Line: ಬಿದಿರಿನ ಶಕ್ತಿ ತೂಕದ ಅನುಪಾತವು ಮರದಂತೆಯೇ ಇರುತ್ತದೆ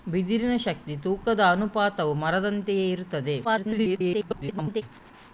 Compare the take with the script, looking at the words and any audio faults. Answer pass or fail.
fail